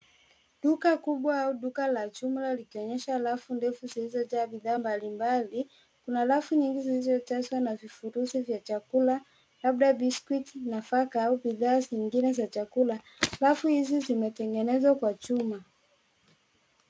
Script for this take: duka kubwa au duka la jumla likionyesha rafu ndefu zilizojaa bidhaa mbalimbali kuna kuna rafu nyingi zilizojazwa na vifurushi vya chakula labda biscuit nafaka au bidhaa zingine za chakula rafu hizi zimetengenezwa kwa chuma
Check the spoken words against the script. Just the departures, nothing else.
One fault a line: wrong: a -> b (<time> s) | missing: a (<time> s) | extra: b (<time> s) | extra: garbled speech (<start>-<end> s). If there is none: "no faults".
missing: kuna (6.2 s)